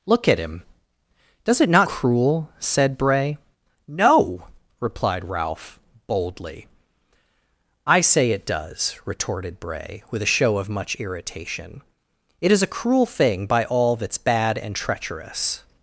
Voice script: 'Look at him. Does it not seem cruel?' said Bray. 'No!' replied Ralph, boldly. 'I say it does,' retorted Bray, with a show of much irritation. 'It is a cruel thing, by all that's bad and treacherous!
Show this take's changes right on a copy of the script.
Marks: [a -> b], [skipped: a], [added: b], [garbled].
'Look at him. Does it not [skipped: seem] cruel?' said Bray. 'No!' replied Ralph, boldly. 'I say it does,' retorted Bray, with a show of much irritation. 'It is a cruel thing, by all that's bad and treacherous!